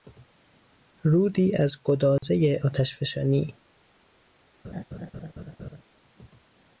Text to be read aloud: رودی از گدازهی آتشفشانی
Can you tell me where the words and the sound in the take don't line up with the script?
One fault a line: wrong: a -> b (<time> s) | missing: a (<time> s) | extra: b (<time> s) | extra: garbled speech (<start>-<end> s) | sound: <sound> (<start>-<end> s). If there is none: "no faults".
sound: dropout (2.2-2.2 s)
sound: laugh (4.6-5.8 s)